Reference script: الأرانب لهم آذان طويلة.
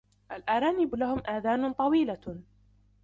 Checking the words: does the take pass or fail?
pass